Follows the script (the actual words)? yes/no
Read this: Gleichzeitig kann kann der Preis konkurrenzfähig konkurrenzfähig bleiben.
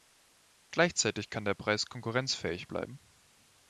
no